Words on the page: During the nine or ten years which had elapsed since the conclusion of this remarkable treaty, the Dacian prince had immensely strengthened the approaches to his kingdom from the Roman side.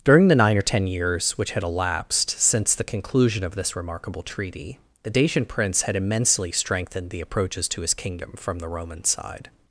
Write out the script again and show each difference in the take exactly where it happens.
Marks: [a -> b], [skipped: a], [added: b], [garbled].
During the nine or ten years which had elapsed since the conclusion of this remarkable treaty, the Dacian prince had immensely strengthened the approaches to his kingdom from the Roman side.